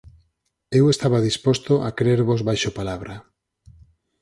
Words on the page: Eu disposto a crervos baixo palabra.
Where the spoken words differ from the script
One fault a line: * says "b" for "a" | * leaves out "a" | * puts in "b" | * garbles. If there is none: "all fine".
* puts in "estaba"